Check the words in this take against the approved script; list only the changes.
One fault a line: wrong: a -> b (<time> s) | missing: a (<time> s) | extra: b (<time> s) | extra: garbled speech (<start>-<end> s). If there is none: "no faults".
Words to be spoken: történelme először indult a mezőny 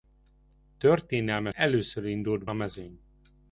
no faults